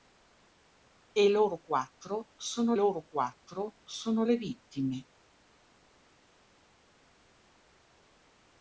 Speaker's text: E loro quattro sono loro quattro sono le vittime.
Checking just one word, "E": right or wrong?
right